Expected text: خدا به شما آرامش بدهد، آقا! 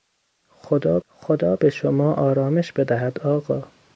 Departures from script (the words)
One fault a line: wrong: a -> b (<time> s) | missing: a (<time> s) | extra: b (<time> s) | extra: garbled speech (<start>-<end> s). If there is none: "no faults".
extra: خدا (1.1 s)